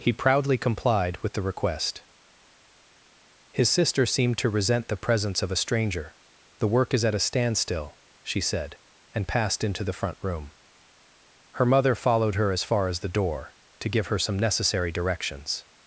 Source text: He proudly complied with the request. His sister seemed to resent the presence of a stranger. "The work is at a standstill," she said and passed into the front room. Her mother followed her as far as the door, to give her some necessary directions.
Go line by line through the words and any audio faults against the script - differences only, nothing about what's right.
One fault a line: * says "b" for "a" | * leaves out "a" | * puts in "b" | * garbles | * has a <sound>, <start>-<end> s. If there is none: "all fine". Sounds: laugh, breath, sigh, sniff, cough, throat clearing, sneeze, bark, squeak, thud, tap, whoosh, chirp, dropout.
all fine